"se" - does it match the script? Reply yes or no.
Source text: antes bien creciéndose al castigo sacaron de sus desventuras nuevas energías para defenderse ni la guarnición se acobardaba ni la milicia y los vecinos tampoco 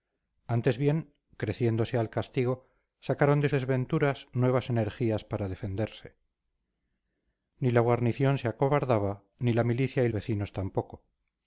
yes